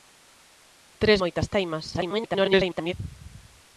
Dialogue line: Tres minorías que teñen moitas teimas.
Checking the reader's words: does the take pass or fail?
fail